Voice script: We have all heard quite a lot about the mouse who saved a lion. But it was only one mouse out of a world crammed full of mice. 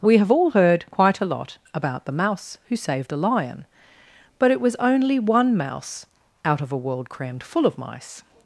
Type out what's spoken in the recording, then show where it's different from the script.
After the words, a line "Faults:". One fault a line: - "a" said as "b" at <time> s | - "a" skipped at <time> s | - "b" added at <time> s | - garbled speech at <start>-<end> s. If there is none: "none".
We have all heard quite a lot about the mouse who saved a lion. But it was only one mouse out of a world crammed full of mice.
Faults:
none